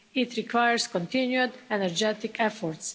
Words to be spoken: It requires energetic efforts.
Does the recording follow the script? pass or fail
fail